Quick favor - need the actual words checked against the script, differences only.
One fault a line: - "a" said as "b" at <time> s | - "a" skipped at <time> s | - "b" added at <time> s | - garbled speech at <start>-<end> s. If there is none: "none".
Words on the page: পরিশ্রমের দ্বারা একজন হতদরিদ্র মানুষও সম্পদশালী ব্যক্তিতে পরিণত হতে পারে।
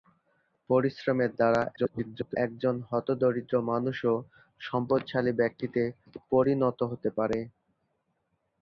- garbled speech at 1.8-2.4 s